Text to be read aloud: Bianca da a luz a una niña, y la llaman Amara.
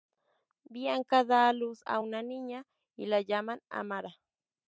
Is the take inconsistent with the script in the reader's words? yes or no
no